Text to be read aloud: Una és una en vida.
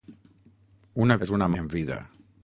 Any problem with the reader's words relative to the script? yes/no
no